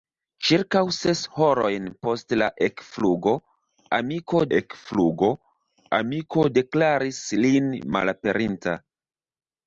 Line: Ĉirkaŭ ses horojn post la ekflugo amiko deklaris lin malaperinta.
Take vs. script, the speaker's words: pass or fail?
fail